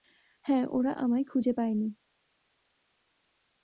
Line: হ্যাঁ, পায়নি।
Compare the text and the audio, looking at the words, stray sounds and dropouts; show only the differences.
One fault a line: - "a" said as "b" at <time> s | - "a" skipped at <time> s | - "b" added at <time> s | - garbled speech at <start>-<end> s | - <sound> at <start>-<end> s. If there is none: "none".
- "ওরা আমায় খুঁজে" added at 0.7 s